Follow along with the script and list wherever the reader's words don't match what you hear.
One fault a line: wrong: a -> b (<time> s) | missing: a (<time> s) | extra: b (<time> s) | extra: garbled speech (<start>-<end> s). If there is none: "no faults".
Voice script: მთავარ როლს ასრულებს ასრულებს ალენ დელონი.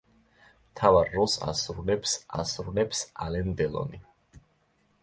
no faults